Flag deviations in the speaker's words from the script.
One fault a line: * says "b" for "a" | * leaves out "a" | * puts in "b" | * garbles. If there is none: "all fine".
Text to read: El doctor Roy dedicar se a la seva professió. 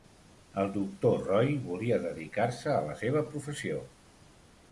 * puts in "volia"